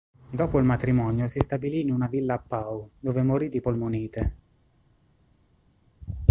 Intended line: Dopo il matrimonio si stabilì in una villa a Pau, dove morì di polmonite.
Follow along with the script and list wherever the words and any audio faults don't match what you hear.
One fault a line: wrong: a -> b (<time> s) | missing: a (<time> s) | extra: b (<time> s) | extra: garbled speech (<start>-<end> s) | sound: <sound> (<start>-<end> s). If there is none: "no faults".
no faults